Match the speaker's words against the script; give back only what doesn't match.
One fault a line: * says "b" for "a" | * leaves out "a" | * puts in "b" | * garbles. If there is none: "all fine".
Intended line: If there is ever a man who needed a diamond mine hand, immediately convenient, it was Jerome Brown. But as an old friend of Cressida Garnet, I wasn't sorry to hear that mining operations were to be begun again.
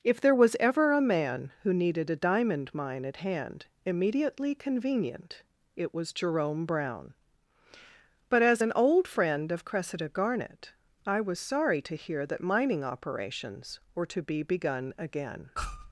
* says "was" for "is"
* puts in "at"
* says "was" for "wasn't"